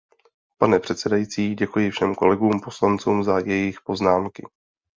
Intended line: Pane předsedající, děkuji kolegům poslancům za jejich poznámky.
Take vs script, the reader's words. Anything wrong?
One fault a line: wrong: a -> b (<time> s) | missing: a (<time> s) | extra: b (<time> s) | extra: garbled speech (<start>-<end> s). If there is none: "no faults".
extra: všem (1.9 s)